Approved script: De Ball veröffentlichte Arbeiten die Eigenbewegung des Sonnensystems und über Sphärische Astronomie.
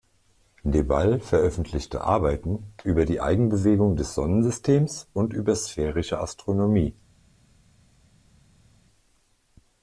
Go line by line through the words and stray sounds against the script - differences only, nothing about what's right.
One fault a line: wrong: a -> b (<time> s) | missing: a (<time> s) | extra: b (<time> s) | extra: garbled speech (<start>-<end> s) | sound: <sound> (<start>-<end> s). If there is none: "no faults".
extra: über (2.8 s)